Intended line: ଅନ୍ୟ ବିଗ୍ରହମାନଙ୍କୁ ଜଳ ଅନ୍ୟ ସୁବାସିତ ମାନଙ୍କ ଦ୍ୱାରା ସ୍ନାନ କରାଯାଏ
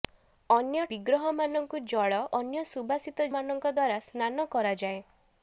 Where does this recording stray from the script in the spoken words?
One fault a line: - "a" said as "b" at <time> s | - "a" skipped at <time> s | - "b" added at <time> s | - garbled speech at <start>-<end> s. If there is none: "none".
none